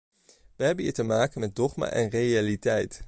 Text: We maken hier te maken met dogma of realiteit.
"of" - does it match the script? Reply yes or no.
no